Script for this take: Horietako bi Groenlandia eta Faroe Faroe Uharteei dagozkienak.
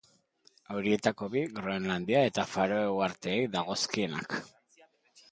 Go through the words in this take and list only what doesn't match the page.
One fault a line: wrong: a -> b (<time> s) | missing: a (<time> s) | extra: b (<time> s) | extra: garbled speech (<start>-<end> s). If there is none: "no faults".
missing: Faroe (2.9 s)